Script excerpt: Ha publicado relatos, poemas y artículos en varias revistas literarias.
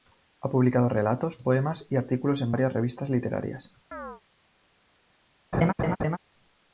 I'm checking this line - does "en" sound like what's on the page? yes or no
yes